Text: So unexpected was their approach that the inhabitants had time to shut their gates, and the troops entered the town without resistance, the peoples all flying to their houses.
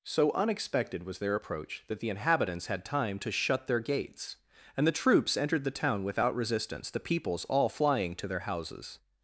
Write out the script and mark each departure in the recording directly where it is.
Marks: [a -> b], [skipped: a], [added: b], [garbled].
So unexpected was their approach that the inhabitants had time to shut their gates, and the troops entered the town without resistance, the peoples all flying to their houses.